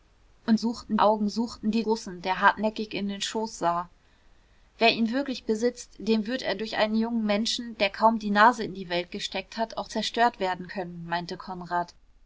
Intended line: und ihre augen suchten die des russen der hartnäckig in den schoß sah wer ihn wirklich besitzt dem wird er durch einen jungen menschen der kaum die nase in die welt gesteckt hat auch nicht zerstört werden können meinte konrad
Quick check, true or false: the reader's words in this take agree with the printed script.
false